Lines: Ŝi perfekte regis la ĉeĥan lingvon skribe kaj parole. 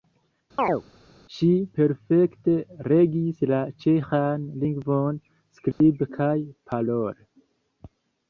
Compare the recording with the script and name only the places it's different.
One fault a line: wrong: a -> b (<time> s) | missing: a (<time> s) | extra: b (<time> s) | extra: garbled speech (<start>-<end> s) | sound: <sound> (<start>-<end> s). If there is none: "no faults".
sound: chirp (0.6-0.8 s)
sound: dropout (5.7-5.8 s)